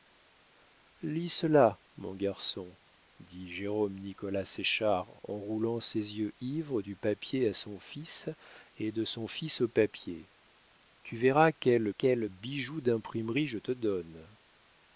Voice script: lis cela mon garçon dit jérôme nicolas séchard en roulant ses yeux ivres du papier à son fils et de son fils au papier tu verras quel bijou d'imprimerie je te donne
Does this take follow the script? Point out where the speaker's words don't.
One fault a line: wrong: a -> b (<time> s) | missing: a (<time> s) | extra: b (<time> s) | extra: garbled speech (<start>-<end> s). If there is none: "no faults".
extra: quel (11.9 s)